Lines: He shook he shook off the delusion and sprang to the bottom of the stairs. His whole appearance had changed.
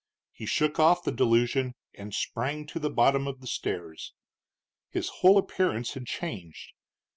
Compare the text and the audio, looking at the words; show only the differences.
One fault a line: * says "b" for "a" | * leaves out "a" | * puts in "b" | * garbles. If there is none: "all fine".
* leaves out "he shook"